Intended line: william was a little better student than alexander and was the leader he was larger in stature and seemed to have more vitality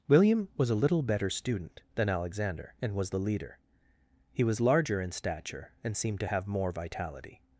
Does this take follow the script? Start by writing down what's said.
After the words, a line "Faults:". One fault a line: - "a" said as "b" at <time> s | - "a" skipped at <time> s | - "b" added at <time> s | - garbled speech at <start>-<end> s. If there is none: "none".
william was a little better student than alexander and was the leader he was larger in stature and seemed to have more vitality
Faults:
none